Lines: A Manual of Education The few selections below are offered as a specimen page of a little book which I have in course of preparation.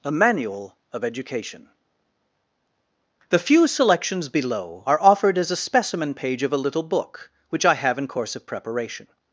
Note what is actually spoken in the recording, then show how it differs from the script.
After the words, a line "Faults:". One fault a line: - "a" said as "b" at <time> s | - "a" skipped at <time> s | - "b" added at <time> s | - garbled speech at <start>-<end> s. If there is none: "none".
A Manual of Education The few selections below are offered as a specimen page of a little book which I have in course of preparation.
Faults:
none